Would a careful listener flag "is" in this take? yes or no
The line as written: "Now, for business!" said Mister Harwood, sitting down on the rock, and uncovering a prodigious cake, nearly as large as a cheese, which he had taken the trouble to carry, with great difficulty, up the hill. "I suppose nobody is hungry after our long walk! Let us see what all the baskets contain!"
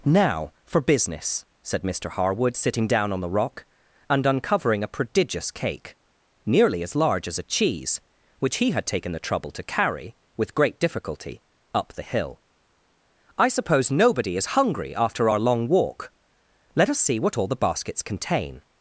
no